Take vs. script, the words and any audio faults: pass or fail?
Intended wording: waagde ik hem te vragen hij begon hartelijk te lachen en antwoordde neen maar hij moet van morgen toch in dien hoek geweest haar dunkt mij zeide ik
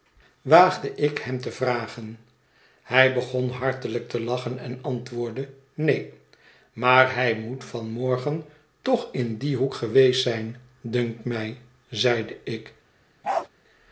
fail